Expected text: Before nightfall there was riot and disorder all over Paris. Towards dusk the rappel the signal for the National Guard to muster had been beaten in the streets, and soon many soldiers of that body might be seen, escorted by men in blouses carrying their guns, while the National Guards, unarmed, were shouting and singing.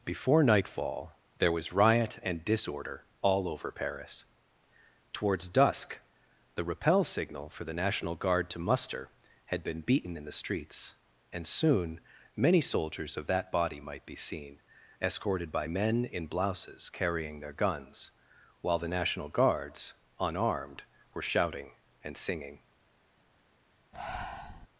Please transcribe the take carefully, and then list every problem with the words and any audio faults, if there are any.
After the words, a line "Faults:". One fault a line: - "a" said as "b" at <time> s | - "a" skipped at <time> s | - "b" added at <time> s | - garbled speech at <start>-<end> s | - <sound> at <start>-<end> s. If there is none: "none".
Before nightfall there was riot and disorder all over Paris. Towards dusk the rappel signal for the National Guard to muster had been beaten in the streets, and soon many soldiers of that body might be seen, escorted by men in blouses carrying their guns, while the National Guards, unarmed, were shouting and singing.
Faults:
- "the" skipped at 7.0 s
- breath at 23.9-24.7 s